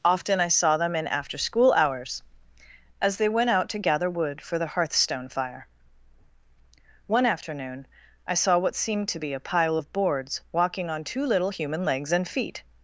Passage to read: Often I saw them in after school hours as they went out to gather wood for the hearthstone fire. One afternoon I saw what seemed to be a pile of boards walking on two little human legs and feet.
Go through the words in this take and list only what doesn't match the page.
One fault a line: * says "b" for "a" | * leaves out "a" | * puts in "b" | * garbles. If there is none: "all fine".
all fine